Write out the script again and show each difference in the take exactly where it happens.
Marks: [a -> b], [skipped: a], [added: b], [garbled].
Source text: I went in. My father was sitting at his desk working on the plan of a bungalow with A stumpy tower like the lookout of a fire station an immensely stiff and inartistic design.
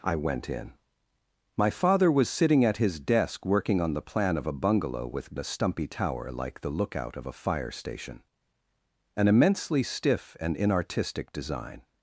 I went in. My father was sitting at his desk working on the plan of a bungalow with A stumpy tower like the lookout of a fire station an immensely stiff and inartistic design.